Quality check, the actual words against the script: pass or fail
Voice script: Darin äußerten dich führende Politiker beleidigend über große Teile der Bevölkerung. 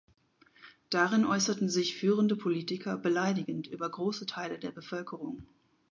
fail